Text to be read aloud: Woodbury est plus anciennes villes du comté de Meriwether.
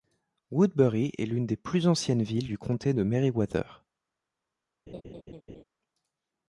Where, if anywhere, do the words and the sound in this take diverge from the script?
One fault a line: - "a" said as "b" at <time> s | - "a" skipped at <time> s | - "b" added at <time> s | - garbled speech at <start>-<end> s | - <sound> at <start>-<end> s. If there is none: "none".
- "l'une des" added at 1.3 s
- laugh at 4.9-5.6 s